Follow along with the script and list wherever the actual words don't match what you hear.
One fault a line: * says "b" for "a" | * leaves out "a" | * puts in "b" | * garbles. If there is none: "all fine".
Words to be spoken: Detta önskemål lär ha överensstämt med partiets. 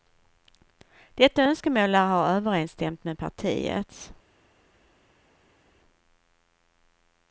all fine